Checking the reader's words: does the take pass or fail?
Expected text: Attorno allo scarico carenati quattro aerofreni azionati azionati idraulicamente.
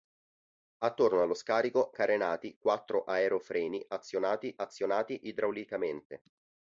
pass